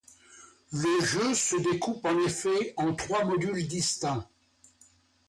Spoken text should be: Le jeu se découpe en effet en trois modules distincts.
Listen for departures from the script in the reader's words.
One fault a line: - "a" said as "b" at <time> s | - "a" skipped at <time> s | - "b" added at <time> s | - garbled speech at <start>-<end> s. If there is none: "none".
none